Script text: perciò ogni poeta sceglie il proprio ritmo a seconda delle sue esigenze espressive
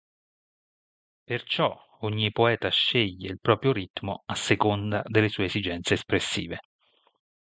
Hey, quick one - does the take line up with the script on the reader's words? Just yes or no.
yes